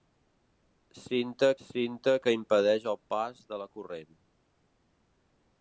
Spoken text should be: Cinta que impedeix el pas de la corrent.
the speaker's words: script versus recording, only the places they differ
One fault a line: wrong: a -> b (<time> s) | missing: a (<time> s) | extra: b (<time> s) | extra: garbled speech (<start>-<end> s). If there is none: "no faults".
extra: cinta (1.6 s)